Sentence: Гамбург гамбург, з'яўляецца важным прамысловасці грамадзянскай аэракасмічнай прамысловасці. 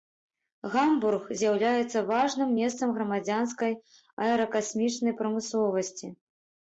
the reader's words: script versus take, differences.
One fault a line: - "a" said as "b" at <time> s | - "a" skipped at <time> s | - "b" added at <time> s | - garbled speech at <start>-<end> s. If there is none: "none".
- "гамбург" skipped at 1.2 s
- "прамысловасці" said as "месцам" at 2.6 s